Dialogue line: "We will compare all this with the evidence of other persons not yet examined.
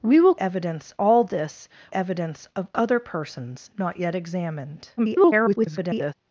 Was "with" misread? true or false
true